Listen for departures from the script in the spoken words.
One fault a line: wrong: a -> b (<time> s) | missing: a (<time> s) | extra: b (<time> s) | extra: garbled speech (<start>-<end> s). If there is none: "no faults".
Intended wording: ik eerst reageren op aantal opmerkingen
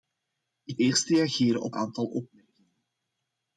no faults